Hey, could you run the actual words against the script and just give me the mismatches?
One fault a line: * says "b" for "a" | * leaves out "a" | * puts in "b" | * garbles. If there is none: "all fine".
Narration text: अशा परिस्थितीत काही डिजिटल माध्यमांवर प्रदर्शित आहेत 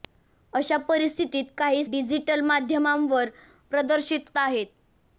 all fine